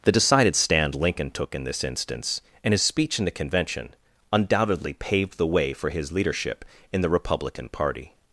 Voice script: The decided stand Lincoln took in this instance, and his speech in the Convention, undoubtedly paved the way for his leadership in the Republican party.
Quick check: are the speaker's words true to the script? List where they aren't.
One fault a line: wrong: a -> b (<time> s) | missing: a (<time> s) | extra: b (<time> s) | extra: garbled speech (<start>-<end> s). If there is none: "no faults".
no faults